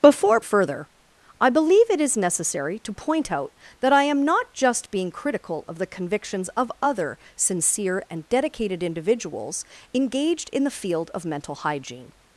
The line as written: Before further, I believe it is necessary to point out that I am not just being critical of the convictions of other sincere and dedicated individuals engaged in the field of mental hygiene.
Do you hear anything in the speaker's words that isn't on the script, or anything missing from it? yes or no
no